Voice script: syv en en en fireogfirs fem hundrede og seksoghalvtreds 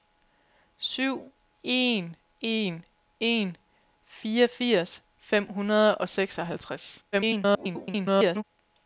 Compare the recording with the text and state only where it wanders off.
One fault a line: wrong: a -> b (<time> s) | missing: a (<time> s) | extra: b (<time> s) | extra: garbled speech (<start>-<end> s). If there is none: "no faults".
extra: garbled speech (7.1-8.4 s)